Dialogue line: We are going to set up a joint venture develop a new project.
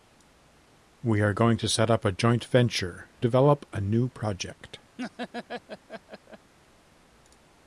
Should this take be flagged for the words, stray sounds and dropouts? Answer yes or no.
yes